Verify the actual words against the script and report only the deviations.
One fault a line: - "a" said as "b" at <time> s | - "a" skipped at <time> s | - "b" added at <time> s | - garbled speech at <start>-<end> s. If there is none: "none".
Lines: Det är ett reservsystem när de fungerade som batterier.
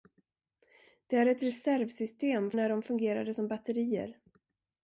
none